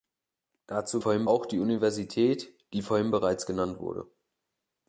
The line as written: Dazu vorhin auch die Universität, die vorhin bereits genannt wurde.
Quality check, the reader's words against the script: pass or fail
pass